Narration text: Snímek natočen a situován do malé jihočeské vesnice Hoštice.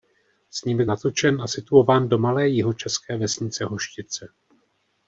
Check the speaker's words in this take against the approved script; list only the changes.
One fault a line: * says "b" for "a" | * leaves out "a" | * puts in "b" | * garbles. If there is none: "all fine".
all fine